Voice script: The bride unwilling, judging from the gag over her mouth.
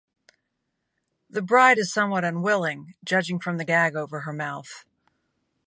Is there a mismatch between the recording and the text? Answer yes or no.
yes